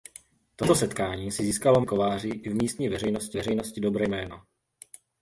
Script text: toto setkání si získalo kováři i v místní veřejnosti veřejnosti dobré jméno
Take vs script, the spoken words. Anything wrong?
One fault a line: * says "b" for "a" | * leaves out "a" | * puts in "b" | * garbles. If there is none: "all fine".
all fine